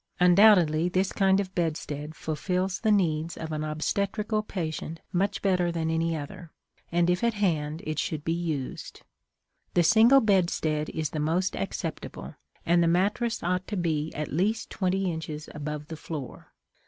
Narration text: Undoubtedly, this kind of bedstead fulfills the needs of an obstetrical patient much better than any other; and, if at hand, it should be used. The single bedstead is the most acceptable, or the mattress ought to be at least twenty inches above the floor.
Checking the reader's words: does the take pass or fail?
fail